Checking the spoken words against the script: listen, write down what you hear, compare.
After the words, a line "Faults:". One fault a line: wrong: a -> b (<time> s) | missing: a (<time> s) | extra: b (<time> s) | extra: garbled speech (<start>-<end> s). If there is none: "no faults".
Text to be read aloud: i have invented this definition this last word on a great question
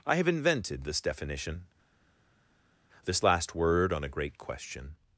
i have invented this definition this last word on a great question
Faults:
no faults